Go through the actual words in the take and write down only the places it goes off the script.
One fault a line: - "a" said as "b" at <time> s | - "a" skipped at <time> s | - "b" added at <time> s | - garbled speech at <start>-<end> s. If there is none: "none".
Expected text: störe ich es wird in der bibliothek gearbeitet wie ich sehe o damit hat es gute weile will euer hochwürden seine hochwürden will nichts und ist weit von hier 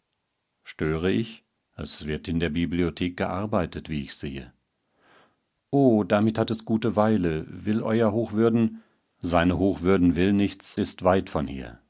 - "und" skipped at 10.8 s